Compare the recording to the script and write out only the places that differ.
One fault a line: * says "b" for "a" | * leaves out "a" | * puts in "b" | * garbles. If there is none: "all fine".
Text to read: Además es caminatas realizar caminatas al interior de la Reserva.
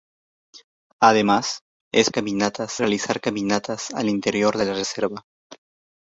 all fine